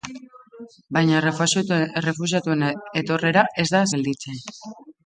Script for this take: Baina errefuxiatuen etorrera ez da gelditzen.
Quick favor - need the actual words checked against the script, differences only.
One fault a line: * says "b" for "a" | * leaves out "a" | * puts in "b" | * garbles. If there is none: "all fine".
all fine